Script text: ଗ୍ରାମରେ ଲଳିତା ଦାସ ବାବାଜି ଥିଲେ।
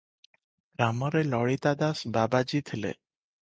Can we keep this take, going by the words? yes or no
yes